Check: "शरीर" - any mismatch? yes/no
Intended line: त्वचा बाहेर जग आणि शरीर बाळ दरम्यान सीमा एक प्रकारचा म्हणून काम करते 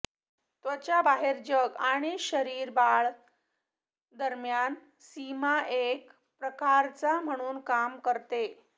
no